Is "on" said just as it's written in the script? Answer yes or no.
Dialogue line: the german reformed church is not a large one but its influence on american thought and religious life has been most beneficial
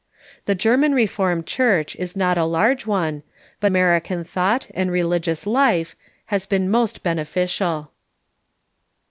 no